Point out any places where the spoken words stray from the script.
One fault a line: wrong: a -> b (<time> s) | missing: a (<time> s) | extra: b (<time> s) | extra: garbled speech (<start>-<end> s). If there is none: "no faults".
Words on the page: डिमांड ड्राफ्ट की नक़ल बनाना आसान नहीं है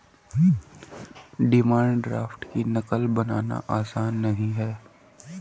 no faults